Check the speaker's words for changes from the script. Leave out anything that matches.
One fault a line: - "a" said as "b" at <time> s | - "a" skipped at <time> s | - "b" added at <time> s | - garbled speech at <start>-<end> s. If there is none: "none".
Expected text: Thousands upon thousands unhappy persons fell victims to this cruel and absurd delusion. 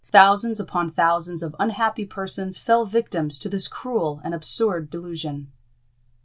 - "of" added at 1.4 s